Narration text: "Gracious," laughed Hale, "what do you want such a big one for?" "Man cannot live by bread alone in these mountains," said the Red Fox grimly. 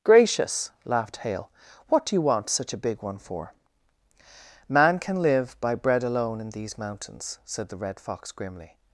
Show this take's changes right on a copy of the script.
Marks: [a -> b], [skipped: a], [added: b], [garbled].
"Gracious," laughed Hale, "what do you want such a big one for?" "Man [cannot -> can] live by bread alone in these mountains," said the Red Fox grimly.